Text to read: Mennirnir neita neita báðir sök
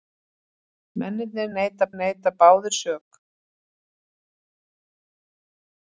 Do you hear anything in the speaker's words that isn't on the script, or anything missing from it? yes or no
no